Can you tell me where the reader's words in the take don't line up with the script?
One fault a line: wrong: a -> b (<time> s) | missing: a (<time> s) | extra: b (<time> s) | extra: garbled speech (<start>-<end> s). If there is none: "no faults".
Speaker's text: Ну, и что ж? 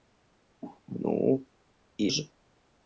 missing: что (2.1 s)